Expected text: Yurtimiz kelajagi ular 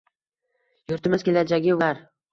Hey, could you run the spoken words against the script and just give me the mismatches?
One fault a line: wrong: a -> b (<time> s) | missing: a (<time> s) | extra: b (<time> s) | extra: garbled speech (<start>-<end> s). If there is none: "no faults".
no faults